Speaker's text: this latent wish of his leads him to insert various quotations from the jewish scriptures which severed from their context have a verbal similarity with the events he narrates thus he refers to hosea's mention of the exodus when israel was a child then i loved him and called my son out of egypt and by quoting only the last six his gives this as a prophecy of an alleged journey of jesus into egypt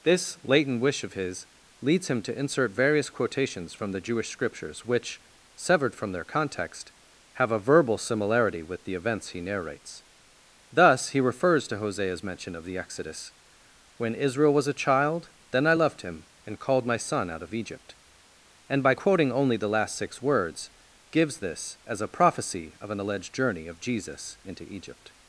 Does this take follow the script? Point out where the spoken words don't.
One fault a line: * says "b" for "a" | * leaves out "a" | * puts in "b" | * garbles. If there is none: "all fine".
* says "words" for "his"